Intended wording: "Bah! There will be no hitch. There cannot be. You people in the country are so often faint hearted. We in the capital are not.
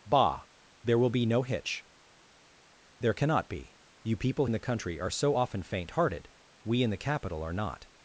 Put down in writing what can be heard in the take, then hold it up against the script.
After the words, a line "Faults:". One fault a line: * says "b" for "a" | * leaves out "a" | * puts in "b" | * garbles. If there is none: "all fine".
"Bah! There will be no hitch. There cannot be. You people in the country are so often faint hearted. We in the capital are not.
Faults:
all fine